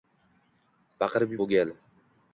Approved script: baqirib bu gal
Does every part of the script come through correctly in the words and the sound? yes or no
yes